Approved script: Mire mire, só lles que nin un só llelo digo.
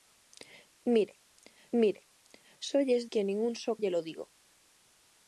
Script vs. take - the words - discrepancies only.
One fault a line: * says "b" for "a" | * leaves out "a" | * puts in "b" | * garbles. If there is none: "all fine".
all fine